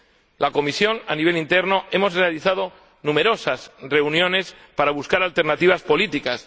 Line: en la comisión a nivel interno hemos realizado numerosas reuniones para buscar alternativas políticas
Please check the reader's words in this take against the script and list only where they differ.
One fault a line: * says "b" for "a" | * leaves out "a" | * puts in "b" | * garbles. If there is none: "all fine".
all fine